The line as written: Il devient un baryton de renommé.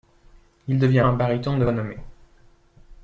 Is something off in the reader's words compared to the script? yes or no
no